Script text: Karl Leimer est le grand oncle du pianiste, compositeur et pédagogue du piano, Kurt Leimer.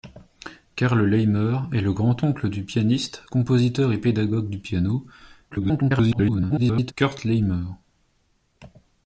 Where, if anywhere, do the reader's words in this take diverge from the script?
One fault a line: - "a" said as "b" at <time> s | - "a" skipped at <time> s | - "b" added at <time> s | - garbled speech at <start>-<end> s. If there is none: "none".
- garbled speech at 5.5-6.9 s